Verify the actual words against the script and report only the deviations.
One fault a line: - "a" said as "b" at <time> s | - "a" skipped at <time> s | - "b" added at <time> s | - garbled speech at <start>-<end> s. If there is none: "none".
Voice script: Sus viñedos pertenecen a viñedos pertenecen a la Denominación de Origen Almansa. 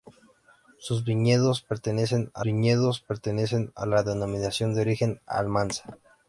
none